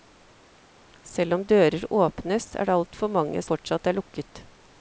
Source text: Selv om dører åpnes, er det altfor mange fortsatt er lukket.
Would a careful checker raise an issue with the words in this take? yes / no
no